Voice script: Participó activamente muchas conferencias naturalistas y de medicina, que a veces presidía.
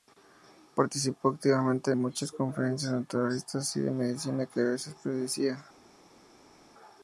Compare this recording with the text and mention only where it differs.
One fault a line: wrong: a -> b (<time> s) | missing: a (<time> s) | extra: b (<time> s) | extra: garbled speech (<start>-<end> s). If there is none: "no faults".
no faults